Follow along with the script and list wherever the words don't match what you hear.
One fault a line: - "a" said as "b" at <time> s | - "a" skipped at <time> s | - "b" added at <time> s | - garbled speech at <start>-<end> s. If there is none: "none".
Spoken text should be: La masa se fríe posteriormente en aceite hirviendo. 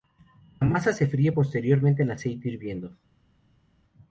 none